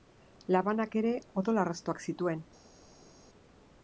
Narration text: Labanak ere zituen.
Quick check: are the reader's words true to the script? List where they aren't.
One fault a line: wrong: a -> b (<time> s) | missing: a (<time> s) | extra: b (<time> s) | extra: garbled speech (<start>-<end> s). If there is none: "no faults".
extra: odol arrastoak (1.4 s)